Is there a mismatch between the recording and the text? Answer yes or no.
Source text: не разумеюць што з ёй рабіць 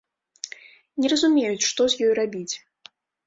no